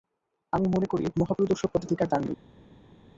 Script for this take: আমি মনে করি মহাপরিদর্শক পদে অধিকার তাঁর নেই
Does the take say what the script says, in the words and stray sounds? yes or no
yes